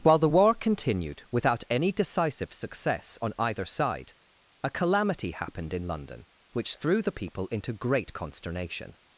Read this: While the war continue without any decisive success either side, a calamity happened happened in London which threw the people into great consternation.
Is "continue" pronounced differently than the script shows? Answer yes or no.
yes